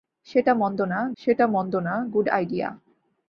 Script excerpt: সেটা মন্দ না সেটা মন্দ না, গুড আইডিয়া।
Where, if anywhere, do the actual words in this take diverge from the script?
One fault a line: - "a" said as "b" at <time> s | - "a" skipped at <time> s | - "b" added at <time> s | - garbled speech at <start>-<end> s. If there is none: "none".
none